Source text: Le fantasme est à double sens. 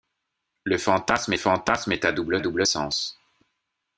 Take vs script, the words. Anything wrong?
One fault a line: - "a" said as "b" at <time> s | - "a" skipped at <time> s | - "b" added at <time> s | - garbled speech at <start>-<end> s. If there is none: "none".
- "fantasme" added at 1.4 s
- "double" added at 2.4 s